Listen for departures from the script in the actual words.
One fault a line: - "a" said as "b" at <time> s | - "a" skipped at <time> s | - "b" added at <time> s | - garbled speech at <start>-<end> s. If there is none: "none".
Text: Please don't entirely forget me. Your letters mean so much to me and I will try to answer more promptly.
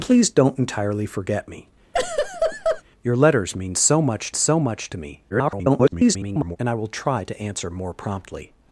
- "so much" added at 4.3 s
- garbled speech at 5.3-6.6 s